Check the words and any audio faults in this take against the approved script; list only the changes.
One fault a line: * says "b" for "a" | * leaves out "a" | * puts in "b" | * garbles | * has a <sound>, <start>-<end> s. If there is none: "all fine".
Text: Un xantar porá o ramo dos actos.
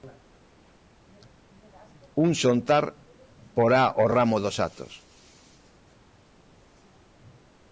all fine